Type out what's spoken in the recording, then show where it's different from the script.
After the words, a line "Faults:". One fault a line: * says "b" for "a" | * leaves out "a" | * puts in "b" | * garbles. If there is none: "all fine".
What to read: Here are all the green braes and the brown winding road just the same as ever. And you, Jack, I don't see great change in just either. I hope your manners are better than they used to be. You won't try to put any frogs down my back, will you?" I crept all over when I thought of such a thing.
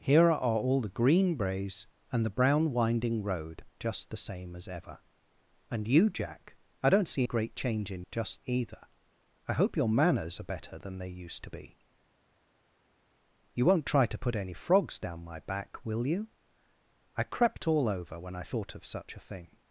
Here are all the green braes and the brown winding road just the same as ever. And you, Jack, I don't see great change in just either. I hope your manners are better than they used to be. You won't try to put any frogs down my back, will you?" I crept all over when I thought of such a thing.
Faults:
all fine